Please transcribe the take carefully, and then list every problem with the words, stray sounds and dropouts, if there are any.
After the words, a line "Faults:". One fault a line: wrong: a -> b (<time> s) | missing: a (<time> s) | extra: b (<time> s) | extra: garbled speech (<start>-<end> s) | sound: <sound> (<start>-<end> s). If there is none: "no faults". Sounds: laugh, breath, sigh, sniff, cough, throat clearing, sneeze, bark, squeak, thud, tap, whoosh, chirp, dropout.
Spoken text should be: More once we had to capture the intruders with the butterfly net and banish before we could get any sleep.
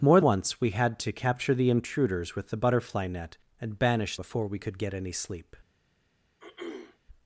More once we had to capture the intruders with the butterfly net and banish before we could get any sleep.
Faults:
sound: throat clearing (6.4-7.0 s)